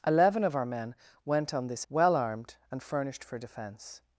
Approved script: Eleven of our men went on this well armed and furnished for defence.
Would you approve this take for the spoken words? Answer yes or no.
yes